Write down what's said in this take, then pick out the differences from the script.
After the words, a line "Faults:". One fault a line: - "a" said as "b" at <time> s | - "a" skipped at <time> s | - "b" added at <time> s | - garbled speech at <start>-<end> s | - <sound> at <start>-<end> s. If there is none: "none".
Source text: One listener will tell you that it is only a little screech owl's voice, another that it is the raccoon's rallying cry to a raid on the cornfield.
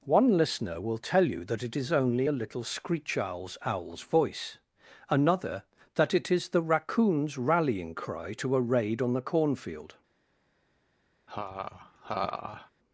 One listener will tell you that it is only a little screech owl's owl's voice, another that it is the raccoon's rallying cry to a raid on the cornfield.
Faults:
- "owl's" added at 3.6 s
- laugh at 11.3-12.7 s